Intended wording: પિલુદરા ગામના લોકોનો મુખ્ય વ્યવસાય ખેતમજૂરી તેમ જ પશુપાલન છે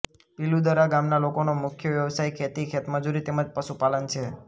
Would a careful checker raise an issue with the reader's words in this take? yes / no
yes